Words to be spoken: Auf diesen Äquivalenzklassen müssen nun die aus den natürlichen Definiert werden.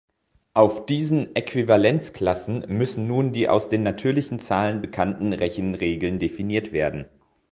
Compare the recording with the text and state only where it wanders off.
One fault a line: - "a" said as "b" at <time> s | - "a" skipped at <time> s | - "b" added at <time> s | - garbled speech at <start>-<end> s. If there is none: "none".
- "Zahlen bekannten Rechenregeln" added at 4.4 s